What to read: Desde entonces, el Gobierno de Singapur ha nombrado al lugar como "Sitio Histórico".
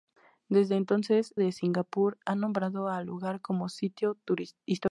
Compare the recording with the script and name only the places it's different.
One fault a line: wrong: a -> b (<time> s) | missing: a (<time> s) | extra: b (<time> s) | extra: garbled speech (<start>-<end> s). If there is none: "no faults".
missing: el Gobierno (1.3 s)